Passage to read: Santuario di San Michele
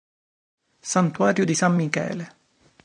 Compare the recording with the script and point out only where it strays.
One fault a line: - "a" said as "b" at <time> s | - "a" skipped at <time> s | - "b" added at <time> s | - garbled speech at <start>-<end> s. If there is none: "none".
none